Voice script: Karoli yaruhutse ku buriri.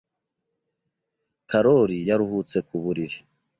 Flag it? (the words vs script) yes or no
no